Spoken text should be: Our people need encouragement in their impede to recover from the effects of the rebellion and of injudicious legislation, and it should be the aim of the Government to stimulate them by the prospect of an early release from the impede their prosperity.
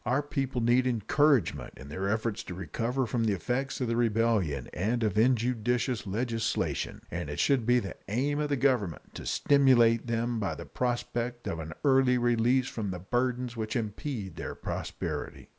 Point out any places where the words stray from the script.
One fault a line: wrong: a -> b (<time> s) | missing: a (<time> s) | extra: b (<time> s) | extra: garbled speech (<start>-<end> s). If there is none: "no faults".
wrong: impede -> efforts (2.1 s)
extra: burdens which (13.0 s)